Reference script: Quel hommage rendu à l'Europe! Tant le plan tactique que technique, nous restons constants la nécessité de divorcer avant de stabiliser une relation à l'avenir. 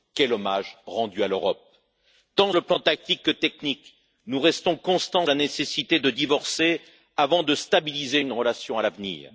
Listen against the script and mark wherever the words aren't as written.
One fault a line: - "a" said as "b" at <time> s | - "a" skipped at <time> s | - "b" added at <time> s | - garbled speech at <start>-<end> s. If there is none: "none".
none